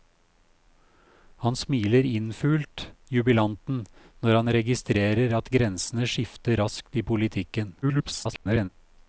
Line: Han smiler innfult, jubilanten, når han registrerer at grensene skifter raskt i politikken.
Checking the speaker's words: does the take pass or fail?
fail